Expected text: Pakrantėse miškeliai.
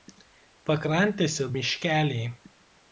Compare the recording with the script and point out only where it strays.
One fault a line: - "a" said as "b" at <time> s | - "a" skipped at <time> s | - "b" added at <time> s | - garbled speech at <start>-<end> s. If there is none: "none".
none